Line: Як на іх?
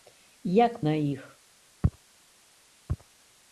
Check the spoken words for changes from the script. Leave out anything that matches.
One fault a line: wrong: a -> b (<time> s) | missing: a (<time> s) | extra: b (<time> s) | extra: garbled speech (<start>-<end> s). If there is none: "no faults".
no faults